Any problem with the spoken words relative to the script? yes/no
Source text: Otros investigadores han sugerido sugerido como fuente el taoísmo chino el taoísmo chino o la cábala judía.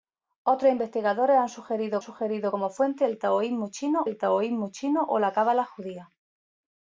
no